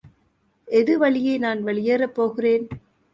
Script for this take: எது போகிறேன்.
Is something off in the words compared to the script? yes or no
yes